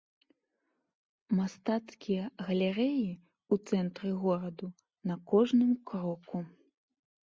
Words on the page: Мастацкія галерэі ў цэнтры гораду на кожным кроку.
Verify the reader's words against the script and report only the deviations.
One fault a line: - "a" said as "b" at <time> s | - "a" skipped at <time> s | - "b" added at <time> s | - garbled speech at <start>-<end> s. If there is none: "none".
none